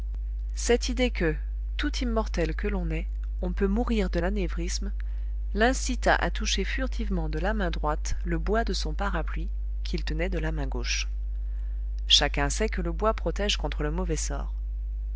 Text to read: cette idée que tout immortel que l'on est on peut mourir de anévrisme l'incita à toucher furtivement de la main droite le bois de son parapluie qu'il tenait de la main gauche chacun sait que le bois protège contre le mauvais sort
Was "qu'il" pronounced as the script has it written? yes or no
yes